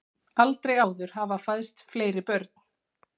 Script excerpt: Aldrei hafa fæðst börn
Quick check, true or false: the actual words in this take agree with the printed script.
false